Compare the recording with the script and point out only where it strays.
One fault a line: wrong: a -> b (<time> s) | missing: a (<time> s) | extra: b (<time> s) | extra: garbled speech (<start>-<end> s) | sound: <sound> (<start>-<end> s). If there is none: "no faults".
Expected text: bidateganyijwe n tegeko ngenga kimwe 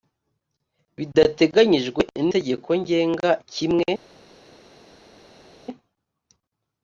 no faults